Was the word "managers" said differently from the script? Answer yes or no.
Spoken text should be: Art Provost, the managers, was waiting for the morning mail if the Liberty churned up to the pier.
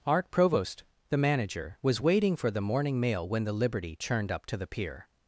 yes